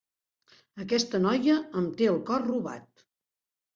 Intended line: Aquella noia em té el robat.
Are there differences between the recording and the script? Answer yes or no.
yes